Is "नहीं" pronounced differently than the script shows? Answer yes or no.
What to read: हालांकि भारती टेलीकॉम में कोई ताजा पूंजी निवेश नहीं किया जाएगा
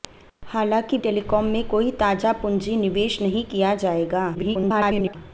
no